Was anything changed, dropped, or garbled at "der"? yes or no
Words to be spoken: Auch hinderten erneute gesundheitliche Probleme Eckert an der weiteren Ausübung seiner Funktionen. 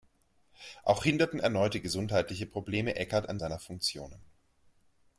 yes